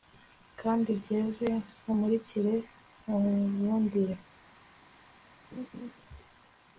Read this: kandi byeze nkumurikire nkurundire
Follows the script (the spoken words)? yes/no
yes